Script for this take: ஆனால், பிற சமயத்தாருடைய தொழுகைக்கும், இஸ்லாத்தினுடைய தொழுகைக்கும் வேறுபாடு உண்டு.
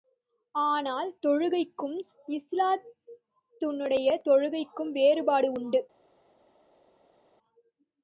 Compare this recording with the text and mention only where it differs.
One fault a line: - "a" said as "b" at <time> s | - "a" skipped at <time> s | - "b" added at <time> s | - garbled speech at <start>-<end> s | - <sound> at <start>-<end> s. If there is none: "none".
- "பிற சமயத்தாருடைய" skipped at 1.1 s